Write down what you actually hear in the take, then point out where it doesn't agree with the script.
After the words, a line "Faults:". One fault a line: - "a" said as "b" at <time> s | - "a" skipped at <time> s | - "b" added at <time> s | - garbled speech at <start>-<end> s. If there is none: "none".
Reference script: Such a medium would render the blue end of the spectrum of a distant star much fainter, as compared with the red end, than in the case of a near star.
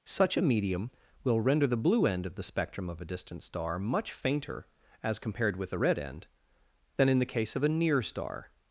Such a medium will render the blue end of the spectrum of a distant star much fainter, as compared with the red end, than in the case of a near star.
Faults:
- "would" said as "will" at 1.2 s